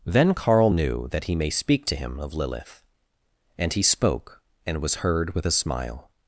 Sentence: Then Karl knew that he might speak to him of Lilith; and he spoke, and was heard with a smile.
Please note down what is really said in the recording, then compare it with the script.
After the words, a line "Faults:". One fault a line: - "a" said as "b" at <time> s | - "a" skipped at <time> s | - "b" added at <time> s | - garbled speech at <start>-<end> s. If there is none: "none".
Then Karl knew that he may speak to him of Lilith; and he spoke, and was heard with a smile.
Faults:
- "might" said as "may" at 1.3 s